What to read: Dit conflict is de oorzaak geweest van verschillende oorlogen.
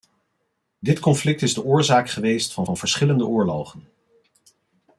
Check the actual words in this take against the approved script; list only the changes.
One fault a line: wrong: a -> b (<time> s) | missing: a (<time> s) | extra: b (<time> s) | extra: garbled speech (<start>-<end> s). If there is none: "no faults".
extra: van (2.6 s)